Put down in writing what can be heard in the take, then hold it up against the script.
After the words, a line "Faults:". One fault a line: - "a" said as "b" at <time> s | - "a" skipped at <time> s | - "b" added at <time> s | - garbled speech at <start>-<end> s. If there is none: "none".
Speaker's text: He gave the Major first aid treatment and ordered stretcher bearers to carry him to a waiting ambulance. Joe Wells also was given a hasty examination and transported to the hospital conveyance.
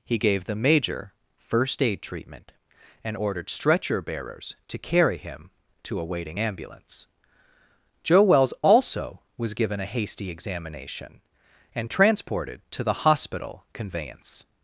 He gave the Major first aid treatment and ordered stretcher bearers to carry him to a waiting ambulance. Joe Wells also was given a hasty examination and transported to the hospital conveyance.
Faults:
none